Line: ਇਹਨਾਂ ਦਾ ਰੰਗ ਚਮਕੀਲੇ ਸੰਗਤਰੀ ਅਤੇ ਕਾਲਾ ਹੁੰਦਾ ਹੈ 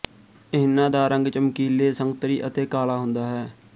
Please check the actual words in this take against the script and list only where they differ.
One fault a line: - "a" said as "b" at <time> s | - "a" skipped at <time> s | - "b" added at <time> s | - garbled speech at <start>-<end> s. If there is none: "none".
none